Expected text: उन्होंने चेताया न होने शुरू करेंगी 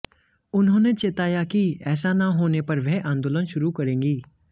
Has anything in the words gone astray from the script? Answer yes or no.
yes